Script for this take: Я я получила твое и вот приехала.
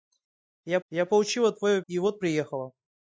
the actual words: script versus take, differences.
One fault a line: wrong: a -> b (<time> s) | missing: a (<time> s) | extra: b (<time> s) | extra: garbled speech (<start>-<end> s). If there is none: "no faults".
no faults